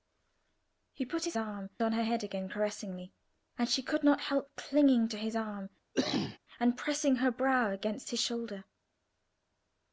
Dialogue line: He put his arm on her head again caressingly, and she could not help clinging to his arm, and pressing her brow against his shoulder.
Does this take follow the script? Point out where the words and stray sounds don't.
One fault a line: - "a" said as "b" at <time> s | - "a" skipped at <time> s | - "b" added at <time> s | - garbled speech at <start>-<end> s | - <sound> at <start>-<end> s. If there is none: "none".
- cough at 5.9-6.4 s